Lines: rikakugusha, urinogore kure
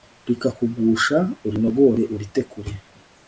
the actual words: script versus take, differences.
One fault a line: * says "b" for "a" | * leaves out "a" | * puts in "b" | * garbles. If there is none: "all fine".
* puts in "urite"